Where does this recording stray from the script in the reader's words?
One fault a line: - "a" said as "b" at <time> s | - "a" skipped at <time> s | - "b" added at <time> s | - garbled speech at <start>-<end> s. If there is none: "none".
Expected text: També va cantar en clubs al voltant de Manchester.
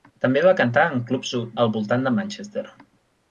none